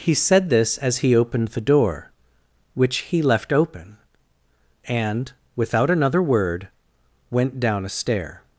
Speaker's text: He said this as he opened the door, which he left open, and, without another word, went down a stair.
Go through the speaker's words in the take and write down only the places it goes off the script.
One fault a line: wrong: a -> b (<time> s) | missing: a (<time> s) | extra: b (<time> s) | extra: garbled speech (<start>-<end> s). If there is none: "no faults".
no faults